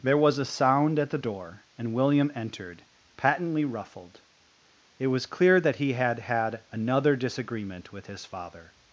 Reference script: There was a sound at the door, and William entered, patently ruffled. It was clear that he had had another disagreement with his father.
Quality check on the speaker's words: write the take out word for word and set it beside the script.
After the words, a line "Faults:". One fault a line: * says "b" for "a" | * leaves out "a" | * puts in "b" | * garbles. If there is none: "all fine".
There was a sound at the door, and William entered, patently ruffled. It was clear that he had had another disagreement with his father.
Faults:
all fine